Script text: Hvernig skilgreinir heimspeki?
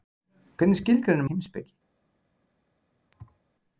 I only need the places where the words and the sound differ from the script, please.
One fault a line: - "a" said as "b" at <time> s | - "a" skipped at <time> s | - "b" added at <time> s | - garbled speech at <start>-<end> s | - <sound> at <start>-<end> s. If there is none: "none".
- thud at 3.1-3.4 s